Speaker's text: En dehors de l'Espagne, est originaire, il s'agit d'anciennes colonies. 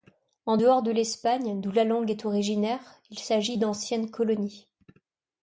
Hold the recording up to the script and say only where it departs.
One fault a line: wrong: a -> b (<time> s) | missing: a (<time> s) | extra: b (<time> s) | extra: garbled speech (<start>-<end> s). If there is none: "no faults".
extra: d'où la langue (1.6 s)